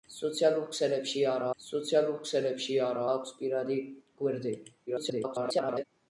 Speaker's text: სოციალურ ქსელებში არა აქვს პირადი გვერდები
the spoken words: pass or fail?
fail